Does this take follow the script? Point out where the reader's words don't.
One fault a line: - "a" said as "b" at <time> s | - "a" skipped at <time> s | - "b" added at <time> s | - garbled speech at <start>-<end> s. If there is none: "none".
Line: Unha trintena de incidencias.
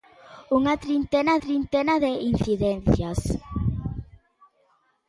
- "trintena" added at 1.4 s